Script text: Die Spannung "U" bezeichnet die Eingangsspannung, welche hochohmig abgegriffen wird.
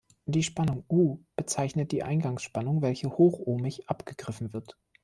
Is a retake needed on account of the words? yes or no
no